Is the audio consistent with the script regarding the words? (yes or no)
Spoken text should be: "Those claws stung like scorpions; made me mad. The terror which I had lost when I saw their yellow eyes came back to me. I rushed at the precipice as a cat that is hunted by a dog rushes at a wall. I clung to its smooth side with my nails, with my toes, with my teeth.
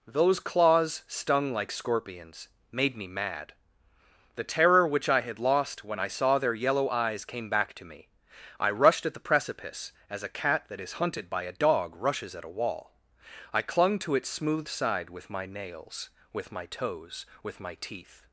yes